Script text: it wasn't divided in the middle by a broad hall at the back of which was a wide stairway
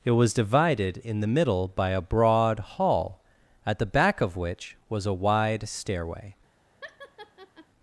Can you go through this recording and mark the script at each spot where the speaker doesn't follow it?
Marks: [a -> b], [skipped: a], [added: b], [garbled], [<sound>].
it [wasn't -> was] divided in the middle by a broad hall at the back of which was a wide stairway [laugh]